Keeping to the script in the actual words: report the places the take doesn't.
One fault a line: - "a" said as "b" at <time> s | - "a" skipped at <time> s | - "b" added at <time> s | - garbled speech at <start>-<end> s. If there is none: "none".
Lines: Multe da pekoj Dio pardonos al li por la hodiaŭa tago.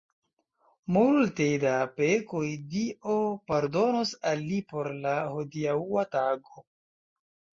none